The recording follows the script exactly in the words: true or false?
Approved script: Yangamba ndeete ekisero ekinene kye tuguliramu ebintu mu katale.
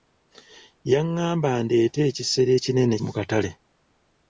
false